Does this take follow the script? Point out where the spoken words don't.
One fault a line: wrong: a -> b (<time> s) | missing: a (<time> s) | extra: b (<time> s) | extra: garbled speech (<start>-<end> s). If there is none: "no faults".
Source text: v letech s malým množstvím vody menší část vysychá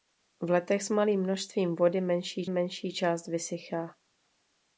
extra: menší (2.5 s)